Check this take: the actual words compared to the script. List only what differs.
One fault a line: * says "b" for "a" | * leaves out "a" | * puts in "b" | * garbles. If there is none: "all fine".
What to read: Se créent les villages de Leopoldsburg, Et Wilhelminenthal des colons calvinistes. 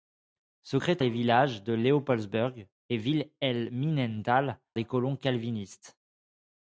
all fine